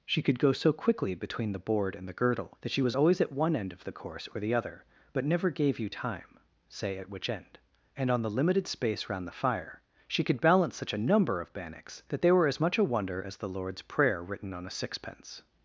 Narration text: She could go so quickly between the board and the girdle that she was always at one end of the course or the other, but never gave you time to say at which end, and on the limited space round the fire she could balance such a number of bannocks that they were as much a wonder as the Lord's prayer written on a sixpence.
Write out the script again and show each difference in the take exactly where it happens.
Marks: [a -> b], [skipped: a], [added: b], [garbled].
She could go so quickly between the board and the girdle that she was always at one end of the course or the other, but never gave you time [skipped: to] say at which end, and on the limited space round the fire she could balance such a number of bannocks that they were as much a wonder as the Lord's prayer written on a sixpence.